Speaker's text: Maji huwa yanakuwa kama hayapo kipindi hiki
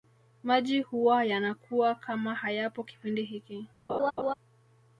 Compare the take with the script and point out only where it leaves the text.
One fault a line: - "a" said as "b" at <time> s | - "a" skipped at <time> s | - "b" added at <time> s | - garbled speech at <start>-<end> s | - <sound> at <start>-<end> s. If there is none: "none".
- laugh at 3.9-4.3 s